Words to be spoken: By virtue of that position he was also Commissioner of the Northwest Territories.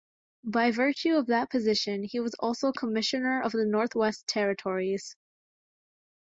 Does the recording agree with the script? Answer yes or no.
yes